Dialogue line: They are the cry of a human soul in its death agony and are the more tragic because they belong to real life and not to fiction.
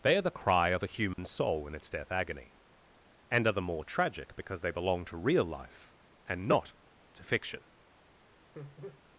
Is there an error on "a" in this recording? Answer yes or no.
no